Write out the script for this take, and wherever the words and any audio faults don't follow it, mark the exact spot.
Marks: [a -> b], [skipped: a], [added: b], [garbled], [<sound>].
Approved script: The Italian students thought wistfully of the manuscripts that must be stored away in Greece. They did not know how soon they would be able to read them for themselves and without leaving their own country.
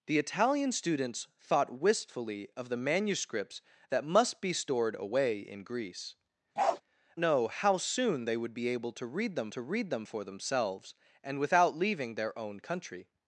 The Italian students thought wistfully of the manuscripts that must be stored away in Greece. [skipped: They did not] [bark] know how soon they would be able to read them [added: to read them] for themselves and without leaving their own country.